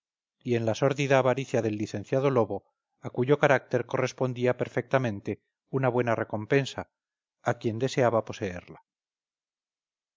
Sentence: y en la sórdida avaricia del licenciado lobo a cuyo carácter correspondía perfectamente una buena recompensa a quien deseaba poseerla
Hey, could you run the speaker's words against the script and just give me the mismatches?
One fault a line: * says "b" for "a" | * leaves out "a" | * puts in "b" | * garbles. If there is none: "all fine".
all fine